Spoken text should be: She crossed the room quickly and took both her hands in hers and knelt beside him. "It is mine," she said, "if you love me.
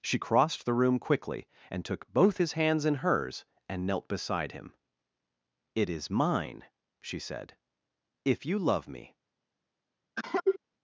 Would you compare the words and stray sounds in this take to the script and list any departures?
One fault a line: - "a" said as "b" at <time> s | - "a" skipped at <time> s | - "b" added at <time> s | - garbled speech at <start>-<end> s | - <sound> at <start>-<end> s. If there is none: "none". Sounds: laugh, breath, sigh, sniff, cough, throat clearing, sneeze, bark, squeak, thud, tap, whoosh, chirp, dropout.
- "her" said as "his" at 2.3 s
- cough at 10.2-10.6 s